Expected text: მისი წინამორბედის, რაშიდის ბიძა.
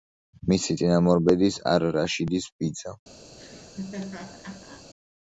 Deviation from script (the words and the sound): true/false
true